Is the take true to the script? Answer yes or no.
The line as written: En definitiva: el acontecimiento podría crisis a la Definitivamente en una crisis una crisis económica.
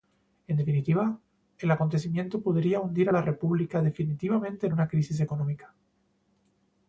no